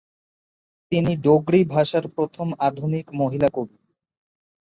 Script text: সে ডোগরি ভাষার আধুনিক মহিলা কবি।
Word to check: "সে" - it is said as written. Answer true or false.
false